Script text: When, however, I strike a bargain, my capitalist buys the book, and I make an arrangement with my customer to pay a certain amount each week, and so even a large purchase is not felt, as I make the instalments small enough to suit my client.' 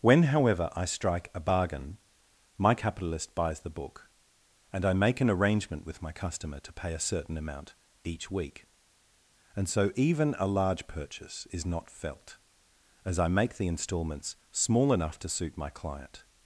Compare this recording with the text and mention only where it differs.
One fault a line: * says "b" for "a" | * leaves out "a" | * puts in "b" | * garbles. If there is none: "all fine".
all fine